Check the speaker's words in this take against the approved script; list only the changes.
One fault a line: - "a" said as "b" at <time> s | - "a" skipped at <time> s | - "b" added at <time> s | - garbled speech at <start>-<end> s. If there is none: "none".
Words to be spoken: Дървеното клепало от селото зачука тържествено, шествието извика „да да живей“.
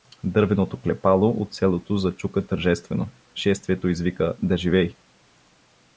- "да" skipped at 4.6 s